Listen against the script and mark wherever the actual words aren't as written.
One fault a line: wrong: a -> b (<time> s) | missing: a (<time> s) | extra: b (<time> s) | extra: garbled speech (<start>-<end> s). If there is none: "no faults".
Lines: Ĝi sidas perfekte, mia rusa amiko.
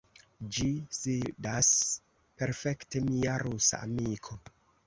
no faults